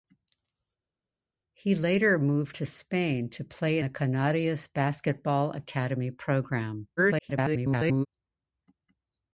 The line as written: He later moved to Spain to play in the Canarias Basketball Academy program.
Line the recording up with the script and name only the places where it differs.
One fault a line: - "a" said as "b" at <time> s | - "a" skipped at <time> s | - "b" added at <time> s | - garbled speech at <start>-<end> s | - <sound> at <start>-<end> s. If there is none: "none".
- "in" skipped at 3.8 s
- garbled speech at 7.0-8.1 s